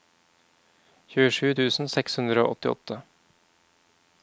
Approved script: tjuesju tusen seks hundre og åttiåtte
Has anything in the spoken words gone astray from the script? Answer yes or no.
no